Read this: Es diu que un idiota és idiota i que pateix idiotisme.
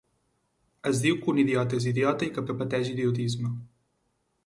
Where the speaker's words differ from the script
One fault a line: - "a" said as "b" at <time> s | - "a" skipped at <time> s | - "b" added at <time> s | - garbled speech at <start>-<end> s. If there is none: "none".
- "que" added at 2.5 s